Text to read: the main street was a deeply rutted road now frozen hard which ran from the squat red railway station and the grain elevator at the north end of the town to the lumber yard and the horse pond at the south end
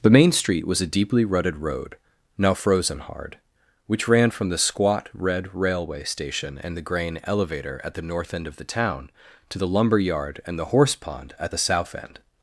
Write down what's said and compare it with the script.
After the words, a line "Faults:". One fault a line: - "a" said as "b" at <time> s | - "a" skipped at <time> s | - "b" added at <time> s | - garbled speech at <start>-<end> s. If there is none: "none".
the main street was a deeply rutted road now frozen hard which ran from the squat red railway station and the grain elevator at the north end of the town to the lumber yard and the horse pond at the south end
Faults:
none